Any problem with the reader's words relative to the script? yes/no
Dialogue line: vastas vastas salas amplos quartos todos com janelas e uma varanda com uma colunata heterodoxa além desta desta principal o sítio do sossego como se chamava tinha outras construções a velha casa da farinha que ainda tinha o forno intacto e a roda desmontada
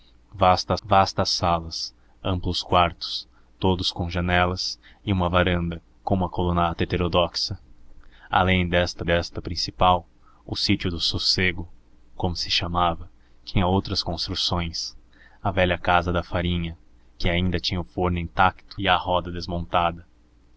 no